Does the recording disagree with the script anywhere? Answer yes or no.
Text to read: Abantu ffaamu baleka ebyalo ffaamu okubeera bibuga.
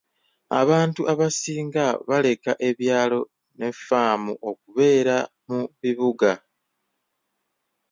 yes